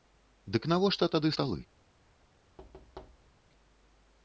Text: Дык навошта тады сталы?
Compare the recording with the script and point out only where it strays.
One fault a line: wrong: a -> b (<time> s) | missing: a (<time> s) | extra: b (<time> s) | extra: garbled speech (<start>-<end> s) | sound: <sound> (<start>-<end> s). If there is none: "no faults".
sound: thud (2.6-3.4 s)